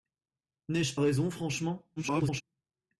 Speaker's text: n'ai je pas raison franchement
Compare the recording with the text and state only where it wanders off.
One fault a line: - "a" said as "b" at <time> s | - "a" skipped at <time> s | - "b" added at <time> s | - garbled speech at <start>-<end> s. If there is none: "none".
- "pas" skipped at 1.0 s
- garbled speech at 2.0-2.4 s